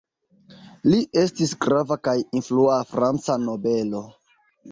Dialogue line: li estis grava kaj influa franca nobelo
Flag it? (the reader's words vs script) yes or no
no